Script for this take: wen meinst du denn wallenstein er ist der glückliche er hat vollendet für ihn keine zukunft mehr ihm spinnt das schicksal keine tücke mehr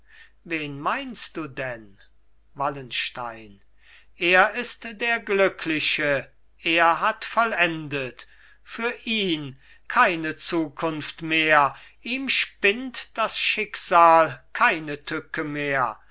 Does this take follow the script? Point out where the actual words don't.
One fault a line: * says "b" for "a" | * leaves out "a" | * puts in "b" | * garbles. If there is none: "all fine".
all fine